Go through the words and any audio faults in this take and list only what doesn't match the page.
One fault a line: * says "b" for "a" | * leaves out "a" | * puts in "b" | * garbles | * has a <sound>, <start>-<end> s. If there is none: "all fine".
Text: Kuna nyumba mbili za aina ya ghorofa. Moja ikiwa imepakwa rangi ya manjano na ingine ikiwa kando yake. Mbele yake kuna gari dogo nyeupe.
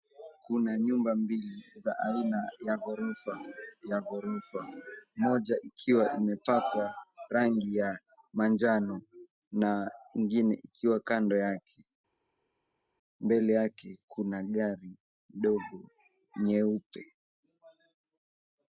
* puts in "ya ghorofa"